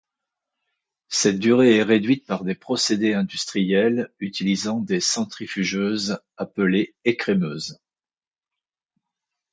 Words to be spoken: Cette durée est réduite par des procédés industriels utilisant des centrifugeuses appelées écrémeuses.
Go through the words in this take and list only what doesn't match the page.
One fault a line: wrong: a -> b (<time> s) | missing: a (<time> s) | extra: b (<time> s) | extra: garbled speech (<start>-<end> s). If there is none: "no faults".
no faults